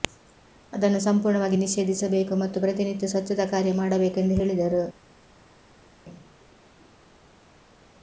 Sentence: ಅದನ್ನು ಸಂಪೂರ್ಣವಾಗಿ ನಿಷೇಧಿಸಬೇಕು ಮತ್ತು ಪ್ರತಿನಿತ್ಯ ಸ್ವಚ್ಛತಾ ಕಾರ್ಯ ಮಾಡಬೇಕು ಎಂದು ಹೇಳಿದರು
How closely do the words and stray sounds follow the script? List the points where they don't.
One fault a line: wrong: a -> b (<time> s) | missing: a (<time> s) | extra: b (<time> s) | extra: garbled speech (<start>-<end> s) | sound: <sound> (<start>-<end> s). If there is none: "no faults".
no faults